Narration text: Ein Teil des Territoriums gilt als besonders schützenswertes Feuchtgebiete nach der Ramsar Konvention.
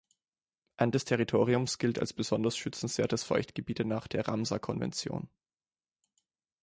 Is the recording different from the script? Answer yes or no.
yes